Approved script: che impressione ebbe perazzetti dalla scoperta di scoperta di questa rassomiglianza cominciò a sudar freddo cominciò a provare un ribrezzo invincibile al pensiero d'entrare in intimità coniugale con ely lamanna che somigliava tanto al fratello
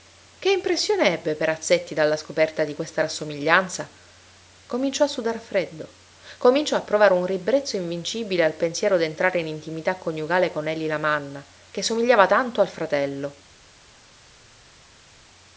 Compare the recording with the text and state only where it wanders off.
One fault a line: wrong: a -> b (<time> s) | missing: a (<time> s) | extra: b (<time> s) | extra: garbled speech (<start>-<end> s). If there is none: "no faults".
missing: scoperta di (2.7 s)